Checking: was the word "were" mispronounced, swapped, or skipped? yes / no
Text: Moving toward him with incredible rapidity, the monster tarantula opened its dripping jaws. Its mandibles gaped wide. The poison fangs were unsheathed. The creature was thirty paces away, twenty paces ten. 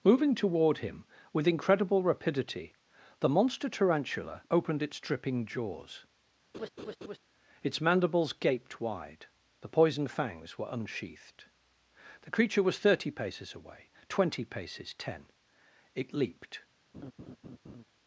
no